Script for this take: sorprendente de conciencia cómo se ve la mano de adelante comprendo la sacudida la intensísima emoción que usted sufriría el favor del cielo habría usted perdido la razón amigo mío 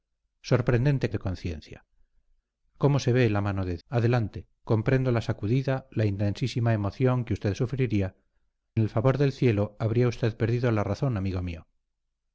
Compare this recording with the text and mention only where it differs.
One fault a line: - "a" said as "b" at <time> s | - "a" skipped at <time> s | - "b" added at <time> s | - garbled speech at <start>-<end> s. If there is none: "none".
none